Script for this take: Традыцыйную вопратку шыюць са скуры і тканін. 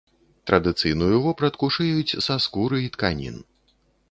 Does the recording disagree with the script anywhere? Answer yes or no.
no